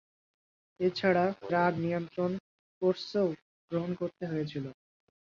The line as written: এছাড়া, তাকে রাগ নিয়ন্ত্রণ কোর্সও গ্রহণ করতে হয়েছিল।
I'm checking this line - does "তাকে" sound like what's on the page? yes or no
no